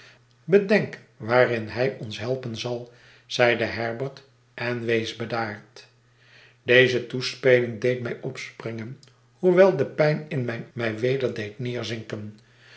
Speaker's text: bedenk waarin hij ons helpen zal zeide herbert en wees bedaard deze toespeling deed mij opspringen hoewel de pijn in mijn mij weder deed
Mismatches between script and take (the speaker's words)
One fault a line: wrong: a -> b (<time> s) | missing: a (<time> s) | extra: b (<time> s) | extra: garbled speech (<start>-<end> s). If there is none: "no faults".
no faults